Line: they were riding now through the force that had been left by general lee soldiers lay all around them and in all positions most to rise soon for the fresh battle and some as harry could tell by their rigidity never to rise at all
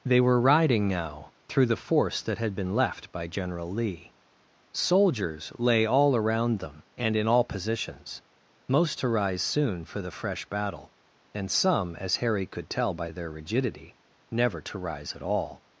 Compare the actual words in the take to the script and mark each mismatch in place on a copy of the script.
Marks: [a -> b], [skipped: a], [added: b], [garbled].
they were riding now through the force that had been left by general lee soldiers lay all around them and in all positions most to rise soon for the fresh battle and some as harry could tell by their rigidity never to rise at all